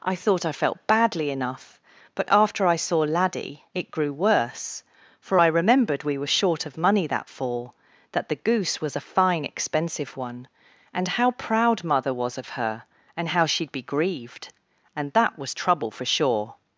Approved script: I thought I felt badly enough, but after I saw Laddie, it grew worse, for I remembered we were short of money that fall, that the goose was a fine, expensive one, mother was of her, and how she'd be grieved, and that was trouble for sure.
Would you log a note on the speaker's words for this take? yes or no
yes